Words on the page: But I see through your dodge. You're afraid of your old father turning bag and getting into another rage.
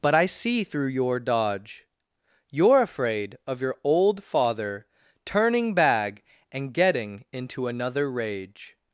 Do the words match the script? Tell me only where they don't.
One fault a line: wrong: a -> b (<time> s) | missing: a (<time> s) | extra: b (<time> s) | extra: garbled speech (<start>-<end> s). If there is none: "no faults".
no faults